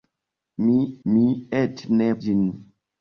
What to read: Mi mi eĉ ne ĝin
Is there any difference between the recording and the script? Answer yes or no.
no